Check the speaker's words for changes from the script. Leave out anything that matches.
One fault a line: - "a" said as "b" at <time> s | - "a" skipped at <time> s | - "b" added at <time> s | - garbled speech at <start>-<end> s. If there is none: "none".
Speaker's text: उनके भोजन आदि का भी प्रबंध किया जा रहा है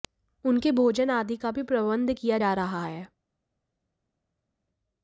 none